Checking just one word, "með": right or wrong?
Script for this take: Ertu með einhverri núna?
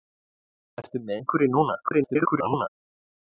right